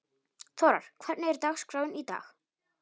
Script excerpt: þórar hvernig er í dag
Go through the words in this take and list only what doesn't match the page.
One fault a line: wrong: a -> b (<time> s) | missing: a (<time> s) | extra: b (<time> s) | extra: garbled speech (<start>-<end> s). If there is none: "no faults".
extra: dagskráin (1.4 s)